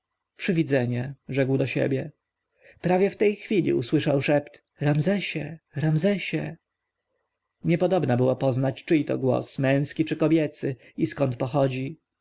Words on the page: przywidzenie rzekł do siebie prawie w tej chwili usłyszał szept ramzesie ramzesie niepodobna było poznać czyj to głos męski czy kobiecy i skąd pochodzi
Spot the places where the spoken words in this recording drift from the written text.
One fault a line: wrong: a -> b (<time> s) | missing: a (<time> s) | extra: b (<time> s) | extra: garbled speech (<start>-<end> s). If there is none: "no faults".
no faults